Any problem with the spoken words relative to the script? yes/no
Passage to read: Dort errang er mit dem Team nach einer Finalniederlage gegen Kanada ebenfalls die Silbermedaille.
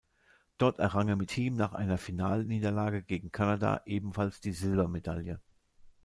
yes